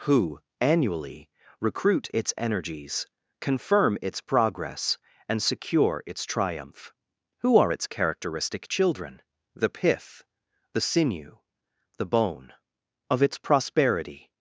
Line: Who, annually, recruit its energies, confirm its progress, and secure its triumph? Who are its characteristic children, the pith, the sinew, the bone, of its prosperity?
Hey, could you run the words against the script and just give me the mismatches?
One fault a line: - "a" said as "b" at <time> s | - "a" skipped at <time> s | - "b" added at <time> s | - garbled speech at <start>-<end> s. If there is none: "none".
none